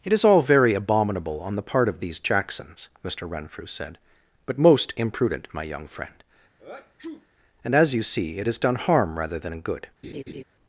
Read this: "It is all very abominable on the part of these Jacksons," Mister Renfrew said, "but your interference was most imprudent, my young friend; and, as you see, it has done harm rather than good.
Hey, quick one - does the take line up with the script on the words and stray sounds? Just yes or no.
no